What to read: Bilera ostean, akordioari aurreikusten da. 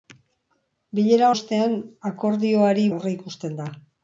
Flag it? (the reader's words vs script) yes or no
no